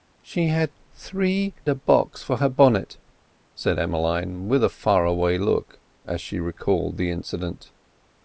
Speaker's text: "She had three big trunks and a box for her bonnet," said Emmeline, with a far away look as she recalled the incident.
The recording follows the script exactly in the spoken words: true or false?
false